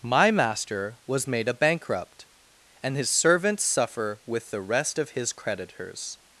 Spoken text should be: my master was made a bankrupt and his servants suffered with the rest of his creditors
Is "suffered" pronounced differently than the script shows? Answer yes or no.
yes